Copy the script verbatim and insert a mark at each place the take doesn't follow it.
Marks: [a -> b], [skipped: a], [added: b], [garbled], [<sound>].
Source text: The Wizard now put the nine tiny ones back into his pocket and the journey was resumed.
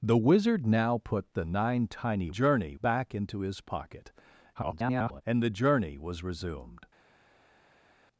The Wizard now put the nine tiny [ones -> journey] back into his pocket [garbled] and the journey was resumed.